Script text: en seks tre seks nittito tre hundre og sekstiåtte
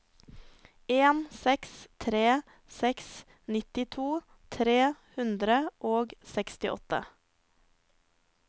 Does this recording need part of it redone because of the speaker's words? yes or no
no